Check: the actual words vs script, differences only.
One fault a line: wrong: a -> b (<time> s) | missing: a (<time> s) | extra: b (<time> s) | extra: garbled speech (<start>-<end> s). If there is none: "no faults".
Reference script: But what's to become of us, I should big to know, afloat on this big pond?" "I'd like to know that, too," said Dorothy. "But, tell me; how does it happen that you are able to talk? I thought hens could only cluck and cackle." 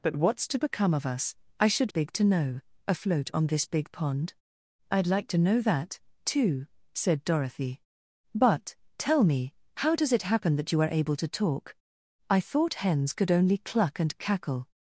no faults